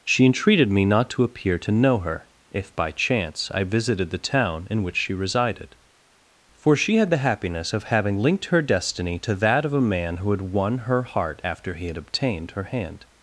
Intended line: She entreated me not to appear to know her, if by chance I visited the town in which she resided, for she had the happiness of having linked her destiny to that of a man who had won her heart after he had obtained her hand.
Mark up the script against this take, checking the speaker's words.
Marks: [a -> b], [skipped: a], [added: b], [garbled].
She entreated me not to appear to know her, if by chance I visited the town in which she resided, for she had the happiness of having linked her destiny to that of a man who had won her heart after he had obtained her hand.